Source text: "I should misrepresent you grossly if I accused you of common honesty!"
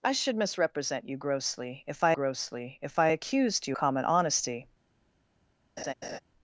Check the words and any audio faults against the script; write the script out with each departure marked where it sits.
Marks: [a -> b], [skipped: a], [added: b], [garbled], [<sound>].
"I should misrepresent you grossly if I [added: grossly if I] accused you [skipped: of] common honesty!" [laugh]